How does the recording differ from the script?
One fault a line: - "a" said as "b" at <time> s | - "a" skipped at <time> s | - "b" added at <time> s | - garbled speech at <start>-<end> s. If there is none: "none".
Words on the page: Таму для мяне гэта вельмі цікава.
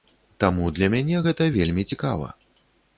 none